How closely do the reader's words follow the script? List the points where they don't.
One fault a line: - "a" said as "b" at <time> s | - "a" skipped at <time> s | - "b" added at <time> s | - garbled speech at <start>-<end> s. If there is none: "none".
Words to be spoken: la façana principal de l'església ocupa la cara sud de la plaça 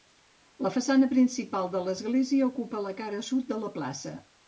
none